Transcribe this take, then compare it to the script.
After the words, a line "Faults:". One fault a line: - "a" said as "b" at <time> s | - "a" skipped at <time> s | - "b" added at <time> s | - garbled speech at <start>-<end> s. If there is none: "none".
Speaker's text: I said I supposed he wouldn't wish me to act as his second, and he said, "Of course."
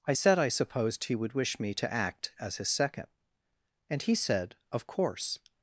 I said I supposed he would wish me to act as his second, and he said, "Of course."
Faults:
- "wouldn't" said as "would" at 1.1 s